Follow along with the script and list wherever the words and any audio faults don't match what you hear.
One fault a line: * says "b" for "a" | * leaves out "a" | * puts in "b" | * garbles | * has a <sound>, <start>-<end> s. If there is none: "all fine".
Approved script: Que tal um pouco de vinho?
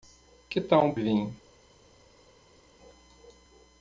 * leaves out "pouco de"